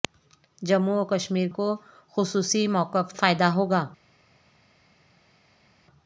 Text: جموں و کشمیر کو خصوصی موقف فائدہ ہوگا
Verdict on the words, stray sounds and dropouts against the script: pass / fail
pass